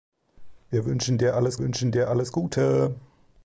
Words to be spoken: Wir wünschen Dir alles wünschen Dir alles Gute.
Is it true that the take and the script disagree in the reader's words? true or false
false